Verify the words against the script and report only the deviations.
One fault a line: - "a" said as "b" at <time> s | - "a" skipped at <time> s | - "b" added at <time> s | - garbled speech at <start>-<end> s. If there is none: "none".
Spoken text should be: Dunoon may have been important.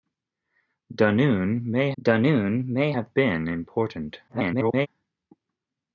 - "dunoon may" added at 2.0 s
- garbled speech at 4.3-4.9 s